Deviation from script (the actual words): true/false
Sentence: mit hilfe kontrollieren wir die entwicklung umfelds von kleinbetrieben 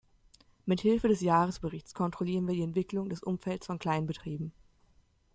true